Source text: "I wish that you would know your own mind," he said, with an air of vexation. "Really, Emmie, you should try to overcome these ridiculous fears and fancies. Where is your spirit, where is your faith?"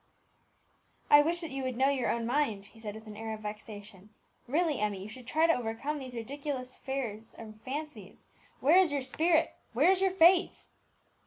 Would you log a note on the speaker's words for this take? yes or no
no